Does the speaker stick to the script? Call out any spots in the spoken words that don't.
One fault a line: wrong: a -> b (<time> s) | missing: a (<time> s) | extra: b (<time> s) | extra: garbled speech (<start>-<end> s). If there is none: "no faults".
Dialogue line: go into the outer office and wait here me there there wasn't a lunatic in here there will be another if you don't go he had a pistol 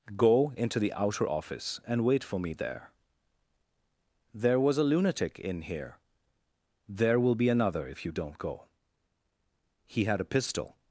wrong: here -> for (2.2 s)
wrong: wasn't -> was (4.6 s)